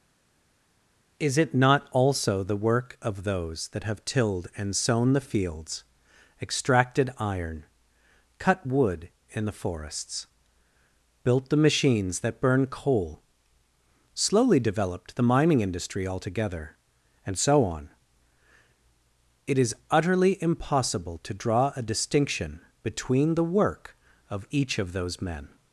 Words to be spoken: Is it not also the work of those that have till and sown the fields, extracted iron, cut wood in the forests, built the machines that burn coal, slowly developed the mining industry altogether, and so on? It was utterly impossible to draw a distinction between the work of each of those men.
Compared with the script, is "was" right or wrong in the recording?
wrong